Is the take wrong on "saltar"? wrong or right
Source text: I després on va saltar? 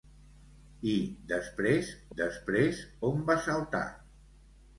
right